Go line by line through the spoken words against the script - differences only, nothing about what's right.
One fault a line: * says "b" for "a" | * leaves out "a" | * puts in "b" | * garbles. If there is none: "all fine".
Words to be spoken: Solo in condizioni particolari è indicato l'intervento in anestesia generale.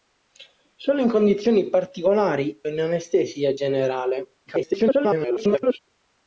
* leaves out "è indicato l'intervento"
* garbles